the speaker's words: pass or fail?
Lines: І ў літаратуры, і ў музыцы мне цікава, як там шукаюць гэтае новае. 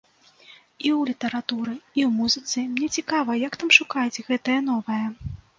pass